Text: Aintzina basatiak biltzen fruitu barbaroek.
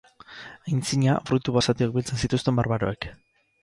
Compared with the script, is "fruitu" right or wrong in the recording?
wrong